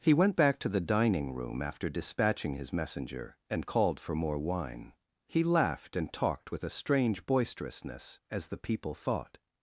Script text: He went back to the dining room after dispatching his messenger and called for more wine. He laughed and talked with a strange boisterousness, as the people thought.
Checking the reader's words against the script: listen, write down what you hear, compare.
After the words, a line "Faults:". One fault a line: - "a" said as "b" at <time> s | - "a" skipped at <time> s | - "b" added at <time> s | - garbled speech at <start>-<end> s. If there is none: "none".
He went back to the dining room after dispatching his messenger and called for more wine. He laughed and talked with a strange boisterousness, as the people thought.
Faults:
none